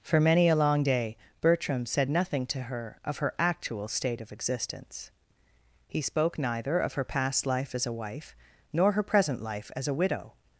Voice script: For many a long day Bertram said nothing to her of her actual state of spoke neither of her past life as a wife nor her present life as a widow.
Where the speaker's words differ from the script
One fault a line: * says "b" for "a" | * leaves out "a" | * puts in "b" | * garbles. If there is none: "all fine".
* puts in "existence He"